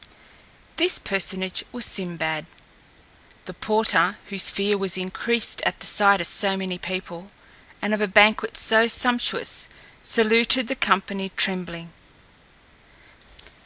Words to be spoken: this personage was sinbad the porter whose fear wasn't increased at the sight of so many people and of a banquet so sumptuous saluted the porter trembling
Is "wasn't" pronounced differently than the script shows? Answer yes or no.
yes